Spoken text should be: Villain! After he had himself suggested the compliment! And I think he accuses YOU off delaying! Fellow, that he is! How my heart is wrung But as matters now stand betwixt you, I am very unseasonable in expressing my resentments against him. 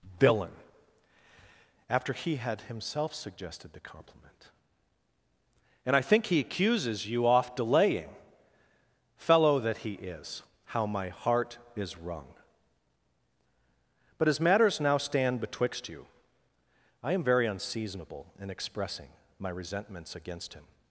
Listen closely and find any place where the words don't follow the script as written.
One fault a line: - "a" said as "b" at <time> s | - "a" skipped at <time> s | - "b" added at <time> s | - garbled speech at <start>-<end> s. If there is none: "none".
none